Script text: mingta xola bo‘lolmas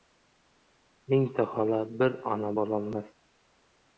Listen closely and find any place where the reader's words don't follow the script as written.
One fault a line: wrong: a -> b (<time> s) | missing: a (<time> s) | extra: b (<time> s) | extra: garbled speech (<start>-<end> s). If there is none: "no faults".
extra: bir ona (2.0 s)